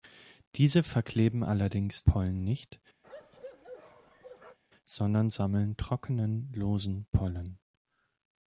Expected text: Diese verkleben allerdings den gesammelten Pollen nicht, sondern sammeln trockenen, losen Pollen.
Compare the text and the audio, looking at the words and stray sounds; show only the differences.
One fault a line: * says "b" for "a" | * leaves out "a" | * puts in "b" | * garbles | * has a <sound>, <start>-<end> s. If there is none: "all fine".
* leaves out "den gesammelten"
* has a bark, 3.0-4.6 s